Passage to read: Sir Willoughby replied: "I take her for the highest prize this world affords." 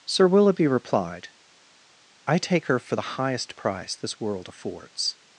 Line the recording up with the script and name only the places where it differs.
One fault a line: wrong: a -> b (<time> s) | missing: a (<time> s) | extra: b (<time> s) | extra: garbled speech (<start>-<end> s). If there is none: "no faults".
wrong: prize -> price (3.6 s)